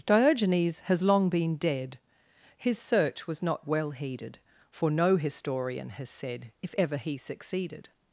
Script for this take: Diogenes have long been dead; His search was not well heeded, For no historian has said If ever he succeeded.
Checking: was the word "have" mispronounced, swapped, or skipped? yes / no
yes